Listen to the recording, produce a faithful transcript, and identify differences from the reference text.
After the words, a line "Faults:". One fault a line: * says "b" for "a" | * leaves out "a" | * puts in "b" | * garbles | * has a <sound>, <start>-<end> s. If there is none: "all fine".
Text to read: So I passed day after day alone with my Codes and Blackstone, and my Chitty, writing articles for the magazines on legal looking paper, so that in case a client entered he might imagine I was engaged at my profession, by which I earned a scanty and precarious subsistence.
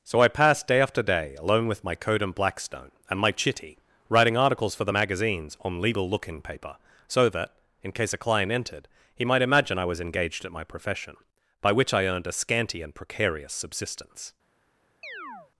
So I passed day after day alone with my Code and Blackstone, and my Chitty, writing articles for the magazines on legal looking paper, so that in case a client entered he might imagine I was engaged at my profession, by which I earned a scanty and precarious subsistence.
Faults:
* says "Code" for "Codes"
* has a chirp, 15.0-15.5 s